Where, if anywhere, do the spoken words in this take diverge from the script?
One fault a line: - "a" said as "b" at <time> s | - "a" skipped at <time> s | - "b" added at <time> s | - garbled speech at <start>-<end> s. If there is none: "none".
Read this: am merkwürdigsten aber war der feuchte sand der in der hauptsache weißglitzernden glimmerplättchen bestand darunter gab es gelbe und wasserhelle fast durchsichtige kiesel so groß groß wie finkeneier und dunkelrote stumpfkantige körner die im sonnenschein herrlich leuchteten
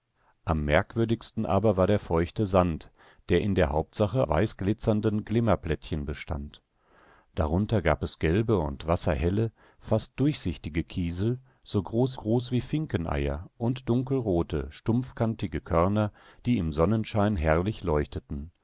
none